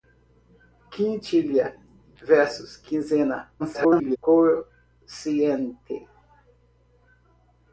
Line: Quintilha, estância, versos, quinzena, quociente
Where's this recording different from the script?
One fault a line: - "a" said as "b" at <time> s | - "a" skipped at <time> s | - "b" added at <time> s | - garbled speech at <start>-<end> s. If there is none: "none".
- "estância" skipped at 1.8 s
- garbled speech at 3.6-4.2 s